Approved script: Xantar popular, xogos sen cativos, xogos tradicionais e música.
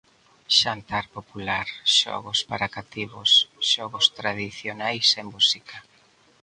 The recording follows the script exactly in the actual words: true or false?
false